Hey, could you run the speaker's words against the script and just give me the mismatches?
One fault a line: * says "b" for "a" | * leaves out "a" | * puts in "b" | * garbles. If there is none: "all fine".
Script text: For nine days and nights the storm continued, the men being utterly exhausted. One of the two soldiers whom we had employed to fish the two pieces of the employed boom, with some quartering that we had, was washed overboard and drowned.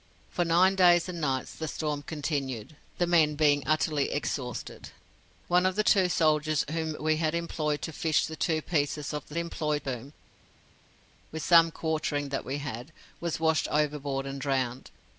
all fine